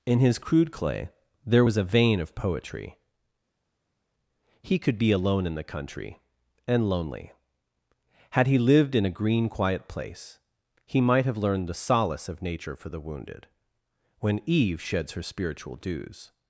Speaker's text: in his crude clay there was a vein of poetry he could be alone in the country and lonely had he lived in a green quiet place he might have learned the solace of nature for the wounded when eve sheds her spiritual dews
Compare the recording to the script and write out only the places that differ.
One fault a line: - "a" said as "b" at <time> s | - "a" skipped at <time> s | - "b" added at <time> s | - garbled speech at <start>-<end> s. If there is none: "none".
none